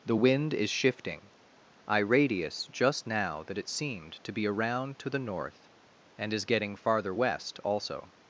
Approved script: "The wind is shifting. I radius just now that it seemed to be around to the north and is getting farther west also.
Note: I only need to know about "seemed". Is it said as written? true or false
true